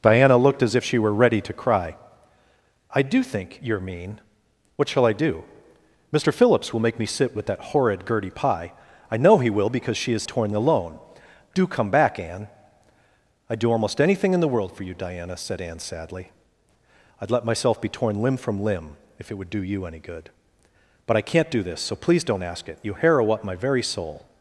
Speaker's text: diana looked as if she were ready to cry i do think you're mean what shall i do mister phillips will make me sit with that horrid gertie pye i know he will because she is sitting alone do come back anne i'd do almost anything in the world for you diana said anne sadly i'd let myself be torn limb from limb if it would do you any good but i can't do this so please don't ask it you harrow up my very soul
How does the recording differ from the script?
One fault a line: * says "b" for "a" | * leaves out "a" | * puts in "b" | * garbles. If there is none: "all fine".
* says "torn" for "sitting"